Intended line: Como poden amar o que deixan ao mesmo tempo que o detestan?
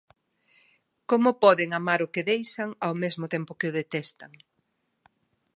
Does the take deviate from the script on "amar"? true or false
false